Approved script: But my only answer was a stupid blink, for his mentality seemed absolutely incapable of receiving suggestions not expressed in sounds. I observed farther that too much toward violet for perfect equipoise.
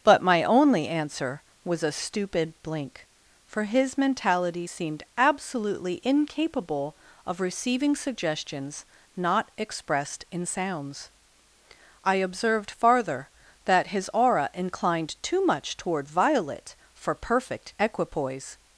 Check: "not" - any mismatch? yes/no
no